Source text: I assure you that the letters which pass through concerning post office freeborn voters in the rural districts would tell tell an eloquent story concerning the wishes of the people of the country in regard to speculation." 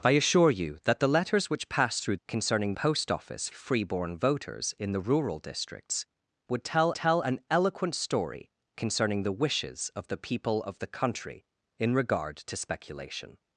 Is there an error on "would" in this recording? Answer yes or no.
no